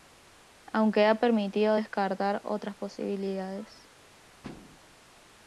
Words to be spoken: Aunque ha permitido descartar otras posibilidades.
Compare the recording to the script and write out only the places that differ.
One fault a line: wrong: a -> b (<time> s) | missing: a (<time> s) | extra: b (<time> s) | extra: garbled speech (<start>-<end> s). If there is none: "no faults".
no faults